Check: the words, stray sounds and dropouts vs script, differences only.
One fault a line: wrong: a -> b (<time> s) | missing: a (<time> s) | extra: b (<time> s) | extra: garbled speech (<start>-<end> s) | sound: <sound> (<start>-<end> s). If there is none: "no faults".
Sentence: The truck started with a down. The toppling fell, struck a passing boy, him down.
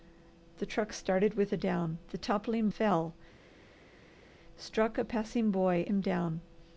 no faults